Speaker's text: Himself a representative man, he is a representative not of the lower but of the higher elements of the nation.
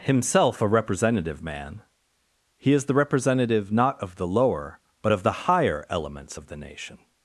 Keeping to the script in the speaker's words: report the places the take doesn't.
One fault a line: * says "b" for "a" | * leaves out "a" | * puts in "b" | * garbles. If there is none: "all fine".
* says "the" for "a"